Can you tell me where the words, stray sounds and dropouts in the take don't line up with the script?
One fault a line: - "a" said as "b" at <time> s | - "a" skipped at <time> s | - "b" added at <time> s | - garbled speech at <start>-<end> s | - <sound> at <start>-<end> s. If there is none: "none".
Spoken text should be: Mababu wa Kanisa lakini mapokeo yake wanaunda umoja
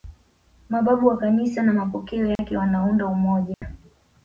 - "lakini" said as "na" at 1.6 s
- dropout at 2.4-2.4 s
- dropout at 3.5-3.6 s